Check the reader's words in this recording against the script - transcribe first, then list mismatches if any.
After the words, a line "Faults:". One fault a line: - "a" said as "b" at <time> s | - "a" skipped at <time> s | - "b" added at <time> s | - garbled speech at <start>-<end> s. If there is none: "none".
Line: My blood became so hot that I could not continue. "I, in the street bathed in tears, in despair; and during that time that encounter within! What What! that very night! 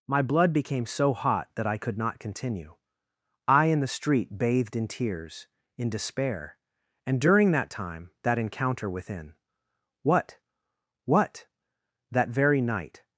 My blood became so hot that I could not continue. "I, in the street bathed in tears, in despair; and during that time that encounter within! What What! that very night!
Faults:
none